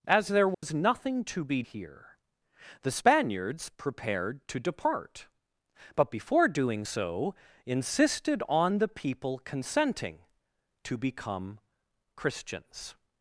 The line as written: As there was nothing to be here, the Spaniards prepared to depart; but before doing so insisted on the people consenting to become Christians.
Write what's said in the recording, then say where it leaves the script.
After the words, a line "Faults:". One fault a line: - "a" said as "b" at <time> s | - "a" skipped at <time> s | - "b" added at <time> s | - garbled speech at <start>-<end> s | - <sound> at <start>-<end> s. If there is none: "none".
As there was nothing to be here, the Spaniards prepared to depart; but before doing so insisted on the people consenting to become Christians.
Faults:
- dropout at 0.5-0.6 s